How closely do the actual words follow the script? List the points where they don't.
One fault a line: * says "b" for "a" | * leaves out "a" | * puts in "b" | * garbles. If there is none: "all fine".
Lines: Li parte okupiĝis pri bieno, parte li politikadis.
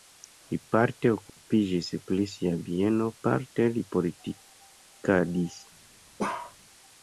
* puts in "sia"